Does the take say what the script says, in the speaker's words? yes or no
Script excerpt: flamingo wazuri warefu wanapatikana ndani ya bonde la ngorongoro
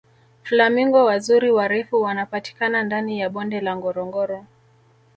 yes